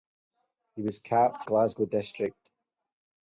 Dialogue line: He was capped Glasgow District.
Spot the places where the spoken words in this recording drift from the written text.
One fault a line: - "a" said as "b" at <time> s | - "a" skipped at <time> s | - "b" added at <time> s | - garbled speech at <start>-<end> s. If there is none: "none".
none